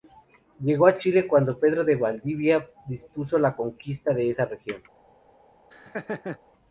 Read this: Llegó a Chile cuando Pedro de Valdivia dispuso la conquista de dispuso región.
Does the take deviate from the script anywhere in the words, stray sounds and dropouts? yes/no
yes